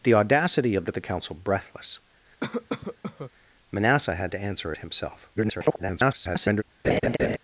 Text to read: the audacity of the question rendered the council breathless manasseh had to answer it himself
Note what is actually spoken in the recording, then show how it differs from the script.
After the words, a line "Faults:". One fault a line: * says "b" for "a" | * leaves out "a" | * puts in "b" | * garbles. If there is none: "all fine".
the audacity of the the council breathless manasseh had to answer it himself [garbled]
Faults:
* leaves out "question rendered"
* garbles